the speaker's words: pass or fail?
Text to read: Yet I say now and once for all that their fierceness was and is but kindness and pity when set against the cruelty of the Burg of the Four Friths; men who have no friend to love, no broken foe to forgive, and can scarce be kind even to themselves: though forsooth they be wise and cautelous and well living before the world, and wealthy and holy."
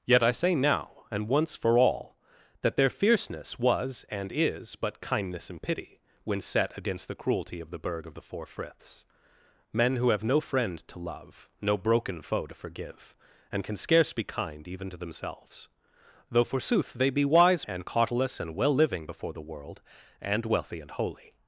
pass